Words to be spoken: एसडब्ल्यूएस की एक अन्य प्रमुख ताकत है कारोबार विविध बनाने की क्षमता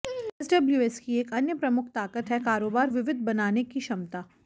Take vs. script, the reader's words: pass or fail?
pass